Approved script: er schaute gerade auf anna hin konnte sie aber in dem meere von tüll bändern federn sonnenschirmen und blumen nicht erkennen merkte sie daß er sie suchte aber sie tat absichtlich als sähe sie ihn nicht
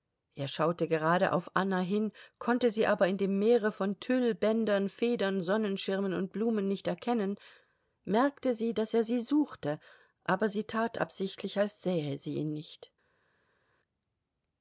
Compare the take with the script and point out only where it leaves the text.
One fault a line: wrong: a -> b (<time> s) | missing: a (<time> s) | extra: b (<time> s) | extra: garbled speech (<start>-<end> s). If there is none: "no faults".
no faults